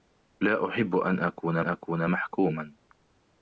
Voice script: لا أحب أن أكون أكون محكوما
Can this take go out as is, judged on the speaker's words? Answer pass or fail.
pass